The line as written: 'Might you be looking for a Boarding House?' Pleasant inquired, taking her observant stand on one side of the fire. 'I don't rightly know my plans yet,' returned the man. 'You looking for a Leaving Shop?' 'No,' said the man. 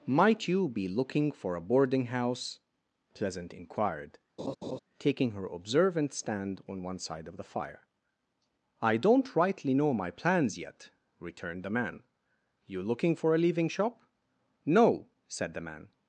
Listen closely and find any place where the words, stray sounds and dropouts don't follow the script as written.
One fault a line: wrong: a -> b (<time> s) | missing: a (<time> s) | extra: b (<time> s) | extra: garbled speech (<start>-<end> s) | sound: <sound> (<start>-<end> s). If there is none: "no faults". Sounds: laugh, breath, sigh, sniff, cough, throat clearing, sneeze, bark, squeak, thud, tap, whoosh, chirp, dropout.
sound: laugh (4.4-4.8 s)